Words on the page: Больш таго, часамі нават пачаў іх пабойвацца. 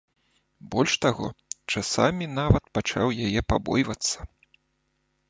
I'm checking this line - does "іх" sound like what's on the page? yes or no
no